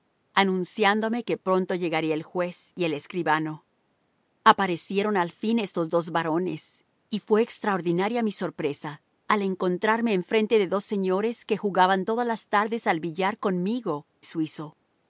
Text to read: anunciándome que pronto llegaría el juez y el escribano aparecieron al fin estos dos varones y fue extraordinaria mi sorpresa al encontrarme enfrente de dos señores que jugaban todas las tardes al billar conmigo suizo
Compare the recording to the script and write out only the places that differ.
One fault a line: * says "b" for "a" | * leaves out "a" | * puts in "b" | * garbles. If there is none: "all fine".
all fine